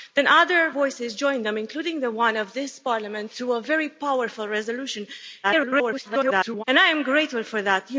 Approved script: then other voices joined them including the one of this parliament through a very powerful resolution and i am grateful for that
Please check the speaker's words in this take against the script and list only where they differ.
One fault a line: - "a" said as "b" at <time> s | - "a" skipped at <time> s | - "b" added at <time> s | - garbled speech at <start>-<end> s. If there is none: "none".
- garbled speech at 5.4-6.6 s